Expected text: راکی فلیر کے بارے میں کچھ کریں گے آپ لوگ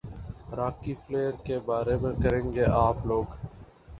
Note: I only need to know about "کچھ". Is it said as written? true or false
false